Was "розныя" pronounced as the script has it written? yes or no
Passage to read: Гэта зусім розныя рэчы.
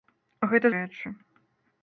no